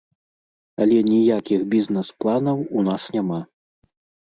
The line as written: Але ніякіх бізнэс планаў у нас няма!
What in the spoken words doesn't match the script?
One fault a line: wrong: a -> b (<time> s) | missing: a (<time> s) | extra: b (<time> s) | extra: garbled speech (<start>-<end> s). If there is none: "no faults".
no faults